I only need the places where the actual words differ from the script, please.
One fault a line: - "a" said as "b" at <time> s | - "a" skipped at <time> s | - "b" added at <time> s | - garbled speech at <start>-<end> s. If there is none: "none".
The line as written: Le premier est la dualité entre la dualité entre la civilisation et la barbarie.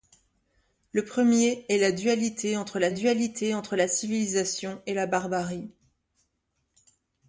none